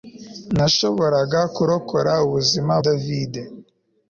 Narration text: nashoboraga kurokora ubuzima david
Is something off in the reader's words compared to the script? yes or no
no